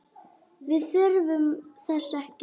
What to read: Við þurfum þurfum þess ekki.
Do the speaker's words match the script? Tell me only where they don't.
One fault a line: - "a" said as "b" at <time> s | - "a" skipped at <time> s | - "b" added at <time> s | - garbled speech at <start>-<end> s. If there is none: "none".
- "þurfum" skipped at 1.4 s